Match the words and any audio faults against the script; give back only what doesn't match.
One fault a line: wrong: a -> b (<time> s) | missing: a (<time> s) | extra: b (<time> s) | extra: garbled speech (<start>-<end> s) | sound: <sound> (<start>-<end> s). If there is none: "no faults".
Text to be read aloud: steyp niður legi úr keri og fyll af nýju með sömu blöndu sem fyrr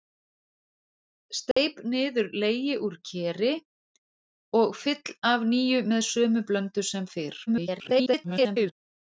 sound: dropout (1.5-1.6 s)
extra: garbled speech (7.5-8.7 s)